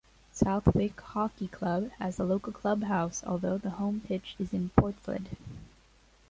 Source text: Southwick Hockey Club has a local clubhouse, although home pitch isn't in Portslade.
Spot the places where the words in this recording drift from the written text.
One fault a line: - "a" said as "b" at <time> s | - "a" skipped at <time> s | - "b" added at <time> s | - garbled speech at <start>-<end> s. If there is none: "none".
- "the" added at 3.6 s
- "isn't" said as "is" at 4.4 s